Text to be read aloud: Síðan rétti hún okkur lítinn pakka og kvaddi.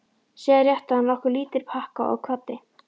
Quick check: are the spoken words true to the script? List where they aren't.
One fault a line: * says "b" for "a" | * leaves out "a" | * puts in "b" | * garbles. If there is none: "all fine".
* says "hann" for "hún"